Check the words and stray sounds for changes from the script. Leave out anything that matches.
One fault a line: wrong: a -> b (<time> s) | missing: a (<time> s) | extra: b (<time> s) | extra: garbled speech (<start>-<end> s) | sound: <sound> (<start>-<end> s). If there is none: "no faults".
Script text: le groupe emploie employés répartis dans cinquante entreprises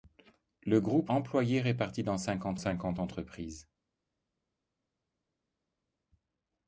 missing: emploie (1.1 s)
extra: cinquante (2.5 s)